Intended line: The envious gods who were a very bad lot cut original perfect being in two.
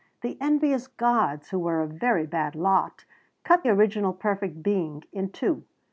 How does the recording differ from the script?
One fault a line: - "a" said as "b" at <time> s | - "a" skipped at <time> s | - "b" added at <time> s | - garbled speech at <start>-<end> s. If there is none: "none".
none